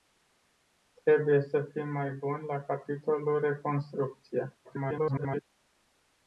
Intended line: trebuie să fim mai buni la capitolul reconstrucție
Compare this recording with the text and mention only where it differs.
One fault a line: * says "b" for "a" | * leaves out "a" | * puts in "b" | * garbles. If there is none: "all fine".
* garbles